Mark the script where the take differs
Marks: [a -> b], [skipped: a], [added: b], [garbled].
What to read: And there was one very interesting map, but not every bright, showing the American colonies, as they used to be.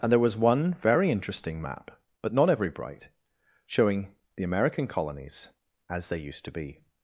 And there was one very interesting map, but not every bright, showing the American colonies, as they used to be.